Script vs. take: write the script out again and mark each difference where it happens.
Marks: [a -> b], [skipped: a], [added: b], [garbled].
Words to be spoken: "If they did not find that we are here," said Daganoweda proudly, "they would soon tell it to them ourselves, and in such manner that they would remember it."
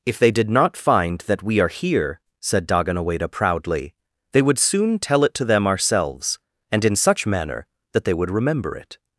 "If they did not find that we are here," said Daganoweda proudly, "they would soon tell it to them ourselves, and in such manner that they would remember it."